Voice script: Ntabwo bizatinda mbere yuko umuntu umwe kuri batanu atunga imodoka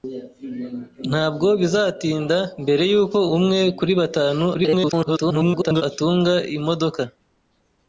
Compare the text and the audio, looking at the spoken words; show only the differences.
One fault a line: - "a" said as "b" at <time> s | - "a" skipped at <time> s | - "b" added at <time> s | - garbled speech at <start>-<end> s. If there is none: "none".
- "umuntu" skipped at 3.2 s
- garbled speech at 4.5-5.8 s